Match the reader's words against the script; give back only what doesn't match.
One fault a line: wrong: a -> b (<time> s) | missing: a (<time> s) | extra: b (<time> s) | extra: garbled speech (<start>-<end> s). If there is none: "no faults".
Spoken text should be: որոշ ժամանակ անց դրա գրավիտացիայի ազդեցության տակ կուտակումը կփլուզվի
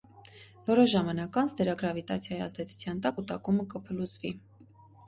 no faults